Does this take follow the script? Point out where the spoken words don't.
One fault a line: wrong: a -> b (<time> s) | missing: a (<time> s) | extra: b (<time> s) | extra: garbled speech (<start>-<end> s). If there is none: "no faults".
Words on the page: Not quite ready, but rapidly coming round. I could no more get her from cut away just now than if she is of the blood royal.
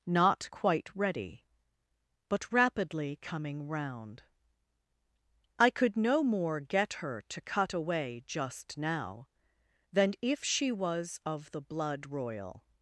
wrong: from -> to (7.3 s)
wrong: is -> was (10.7 s)